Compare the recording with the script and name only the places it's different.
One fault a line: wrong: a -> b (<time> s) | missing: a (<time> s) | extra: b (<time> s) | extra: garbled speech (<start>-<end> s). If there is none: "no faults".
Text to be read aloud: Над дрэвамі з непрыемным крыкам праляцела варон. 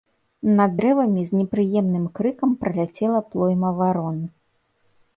extra: плойма (3.3 s)